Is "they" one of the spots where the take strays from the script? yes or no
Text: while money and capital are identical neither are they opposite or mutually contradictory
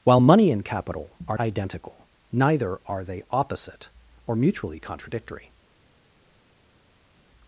no